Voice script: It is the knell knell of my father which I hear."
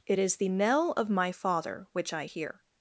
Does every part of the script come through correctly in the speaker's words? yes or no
no